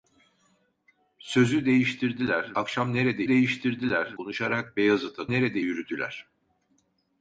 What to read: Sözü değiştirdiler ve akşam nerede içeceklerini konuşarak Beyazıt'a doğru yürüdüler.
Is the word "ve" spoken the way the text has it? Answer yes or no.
no